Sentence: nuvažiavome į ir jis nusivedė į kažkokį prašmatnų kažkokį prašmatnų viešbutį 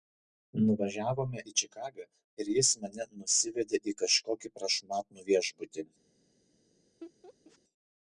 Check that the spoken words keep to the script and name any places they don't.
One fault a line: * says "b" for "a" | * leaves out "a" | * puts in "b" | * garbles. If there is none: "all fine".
* puts in "čikagą"
* puts in "mane"
* leaves out "kažkokį prašmatnų"